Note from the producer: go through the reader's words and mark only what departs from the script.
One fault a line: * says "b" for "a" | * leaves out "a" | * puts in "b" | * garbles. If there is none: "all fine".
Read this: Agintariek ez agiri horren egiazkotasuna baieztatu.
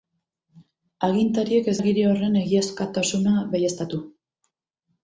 all fine